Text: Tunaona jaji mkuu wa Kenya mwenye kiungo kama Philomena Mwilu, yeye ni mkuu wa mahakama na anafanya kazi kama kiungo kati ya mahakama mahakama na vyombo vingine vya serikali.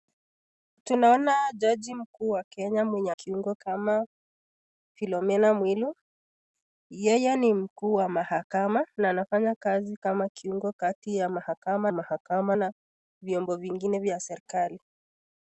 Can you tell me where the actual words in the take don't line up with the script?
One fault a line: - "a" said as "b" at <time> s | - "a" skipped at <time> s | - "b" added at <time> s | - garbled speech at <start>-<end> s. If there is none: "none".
none